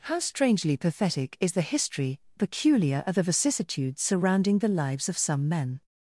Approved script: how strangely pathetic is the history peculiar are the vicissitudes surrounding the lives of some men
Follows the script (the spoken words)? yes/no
yes